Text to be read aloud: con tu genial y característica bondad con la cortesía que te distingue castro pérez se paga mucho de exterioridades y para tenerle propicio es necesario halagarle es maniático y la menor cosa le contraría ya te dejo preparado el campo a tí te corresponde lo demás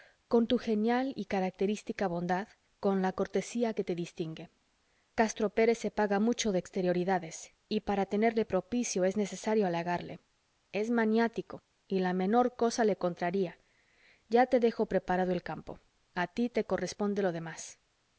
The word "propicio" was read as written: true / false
true